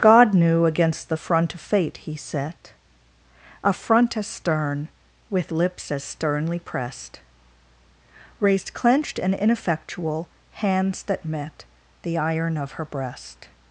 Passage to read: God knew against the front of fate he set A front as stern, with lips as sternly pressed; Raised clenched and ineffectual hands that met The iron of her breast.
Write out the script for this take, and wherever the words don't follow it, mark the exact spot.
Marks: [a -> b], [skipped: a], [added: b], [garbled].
God knew against the front of fate he set A front as stern, with lips as sternly pressed; Raised clenched and ineffectual hands that met The iron of her breast.